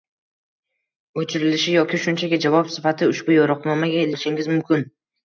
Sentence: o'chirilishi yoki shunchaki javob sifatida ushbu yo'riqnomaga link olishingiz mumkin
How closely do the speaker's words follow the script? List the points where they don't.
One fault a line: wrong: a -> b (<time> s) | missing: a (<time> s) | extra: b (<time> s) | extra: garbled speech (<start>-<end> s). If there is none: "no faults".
missing: link (4.1 s)